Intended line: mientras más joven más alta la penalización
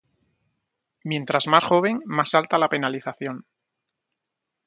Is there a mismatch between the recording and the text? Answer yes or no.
no